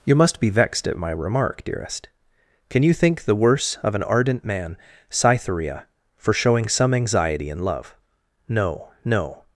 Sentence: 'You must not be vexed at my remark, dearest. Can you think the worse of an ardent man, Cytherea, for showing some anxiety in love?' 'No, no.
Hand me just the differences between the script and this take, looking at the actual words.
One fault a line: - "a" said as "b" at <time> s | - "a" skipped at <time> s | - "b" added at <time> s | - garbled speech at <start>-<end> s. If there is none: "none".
- "not" skipped at 0.4 s